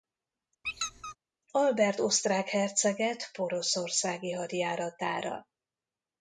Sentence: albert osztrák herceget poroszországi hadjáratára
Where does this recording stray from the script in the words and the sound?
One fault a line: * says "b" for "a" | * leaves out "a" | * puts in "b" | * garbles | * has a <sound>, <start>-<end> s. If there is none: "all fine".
* has a squeak, 0.6-1.2 s